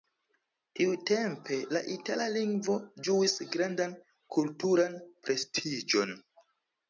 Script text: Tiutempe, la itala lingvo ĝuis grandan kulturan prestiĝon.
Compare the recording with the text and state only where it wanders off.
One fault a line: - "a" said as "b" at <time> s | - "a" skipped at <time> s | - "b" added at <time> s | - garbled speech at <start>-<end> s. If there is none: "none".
none